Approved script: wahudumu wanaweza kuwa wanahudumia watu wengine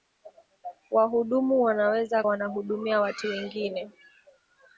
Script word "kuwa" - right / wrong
wrong